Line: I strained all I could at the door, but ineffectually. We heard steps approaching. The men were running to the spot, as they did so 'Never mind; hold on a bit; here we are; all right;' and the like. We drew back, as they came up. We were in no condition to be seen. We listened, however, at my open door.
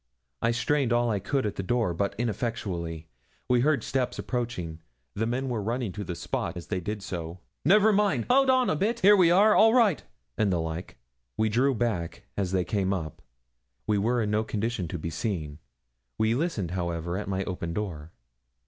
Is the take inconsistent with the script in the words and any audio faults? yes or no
no